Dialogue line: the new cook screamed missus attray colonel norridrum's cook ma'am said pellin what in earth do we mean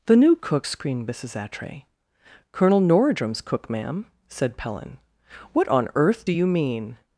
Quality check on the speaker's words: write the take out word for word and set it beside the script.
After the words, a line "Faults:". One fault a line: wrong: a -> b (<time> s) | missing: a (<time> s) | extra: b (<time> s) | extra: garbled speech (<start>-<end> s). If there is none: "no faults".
the new cook screamed missus attray colonel norridrum's cook ma'am said pellin what on earth do you mean
Faults:
wrong: in -> on (5.7 s)
wrong: we -> you (6.3 s)